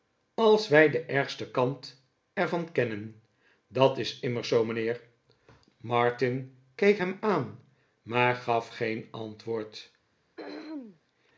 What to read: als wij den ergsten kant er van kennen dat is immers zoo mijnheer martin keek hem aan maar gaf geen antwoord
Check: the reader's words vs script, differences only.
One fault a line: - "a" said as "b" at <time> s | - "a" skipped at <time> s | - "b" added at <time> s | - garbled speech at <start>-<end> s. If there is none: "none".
none